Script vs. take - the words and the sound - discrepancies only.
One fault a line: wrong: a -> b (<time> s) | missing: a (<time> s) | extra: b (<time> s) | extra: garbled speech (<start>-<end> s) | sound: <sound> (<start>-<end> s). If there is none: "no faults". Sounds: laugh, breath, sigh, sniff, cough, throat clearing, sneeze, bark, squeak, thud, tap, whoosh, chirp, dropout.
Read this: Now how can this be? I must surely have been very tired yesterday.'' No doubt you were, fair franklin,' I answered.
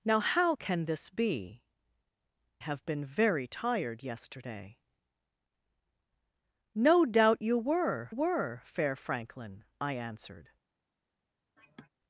missing: I must surely (1.6 s)
extra: were (8.1 s)
sound: sigh (11.6-11.9 s)